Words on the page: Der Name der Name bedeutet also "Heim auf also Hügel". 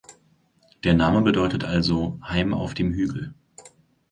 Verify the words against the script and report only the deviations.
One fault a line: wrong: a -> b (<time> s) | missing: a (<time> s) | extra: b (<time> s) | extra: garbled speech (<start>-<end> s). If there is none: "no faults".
missing: der Name (1.2 s)
wrong: also -> dem (2.7 s)